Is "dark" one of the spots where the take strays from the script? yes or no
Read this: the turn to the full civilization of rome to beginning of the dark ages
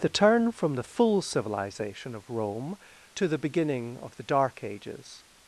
no